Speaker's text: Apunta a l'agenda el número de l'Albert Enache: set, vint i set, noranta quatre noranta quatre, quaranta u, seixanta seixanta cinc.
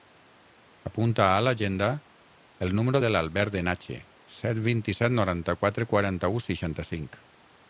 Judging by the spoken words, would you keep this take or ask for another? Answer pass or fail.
fail